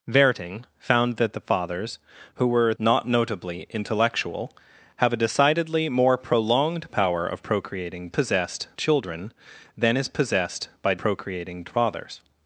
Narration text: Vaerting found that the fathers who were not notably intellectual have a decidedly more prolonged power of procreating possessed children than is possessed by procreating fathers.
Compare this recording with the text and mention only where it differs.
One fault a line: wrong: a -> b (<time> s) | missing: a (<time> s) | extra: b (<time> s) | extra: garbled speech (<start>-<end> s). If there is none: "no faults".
no faults